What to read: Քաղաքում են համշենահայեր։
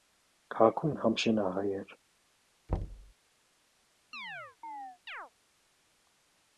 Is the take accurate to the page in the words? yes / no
yes